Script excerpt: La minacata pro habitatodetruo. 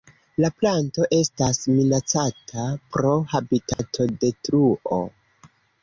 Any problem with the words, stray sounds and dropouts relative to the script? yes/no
yes